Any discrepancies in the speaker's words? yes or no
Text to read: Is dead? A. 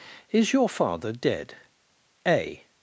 yes